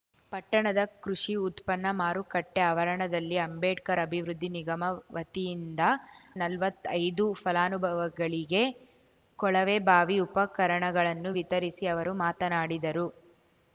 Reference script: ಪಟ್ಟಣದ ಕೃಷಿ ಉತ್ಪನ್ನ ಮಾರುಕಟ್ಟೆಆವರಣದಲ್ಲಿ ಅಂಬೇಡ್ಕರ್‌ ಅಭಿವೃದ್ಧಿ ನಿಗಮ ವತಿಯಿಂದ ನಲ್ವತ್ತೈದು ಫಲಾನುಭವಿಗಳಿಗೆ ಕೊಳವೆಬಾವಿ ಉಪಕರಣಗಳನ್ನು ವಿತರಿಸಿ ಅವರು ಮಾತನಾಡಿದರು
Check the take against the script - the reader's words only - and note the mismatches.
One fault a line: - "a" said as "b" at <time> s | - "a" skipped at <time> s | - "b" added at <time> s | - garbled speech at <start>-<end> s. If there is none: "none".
none